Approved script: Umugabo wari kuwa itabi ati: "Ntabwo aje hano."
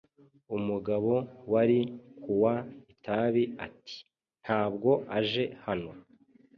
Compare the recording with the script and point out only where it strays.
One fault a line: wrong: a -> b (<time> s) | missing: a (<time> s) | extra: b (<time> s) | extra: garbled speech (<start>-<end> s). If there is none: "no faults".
no faults